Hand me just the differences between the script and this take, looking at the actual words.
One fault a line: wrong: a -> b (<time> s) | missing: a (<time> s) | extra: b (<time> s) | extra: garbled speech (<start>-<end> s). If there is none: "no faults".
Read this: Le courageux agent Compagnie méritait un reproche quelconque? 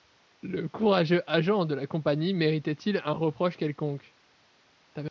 extra: de la (1.6 s)
extra: il (2.7 s)